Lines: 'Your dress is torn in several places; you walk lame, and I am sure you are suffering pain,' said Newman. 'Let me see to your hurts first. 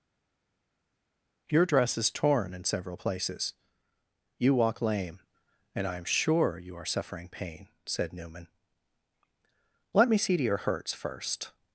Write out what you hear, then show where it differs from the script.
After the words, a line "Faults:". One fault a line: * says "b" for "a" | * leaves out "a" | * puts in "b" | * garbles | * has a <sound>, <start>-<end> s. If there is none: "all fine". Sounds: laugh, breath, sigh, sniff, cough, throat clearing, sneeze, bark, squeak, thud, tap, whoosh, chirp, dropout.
'Your dress is torn in several places; you walk lame, and I am sure you are suffering pain,' said Newman. 'Let me see to your hurts first.
Faults:
all fine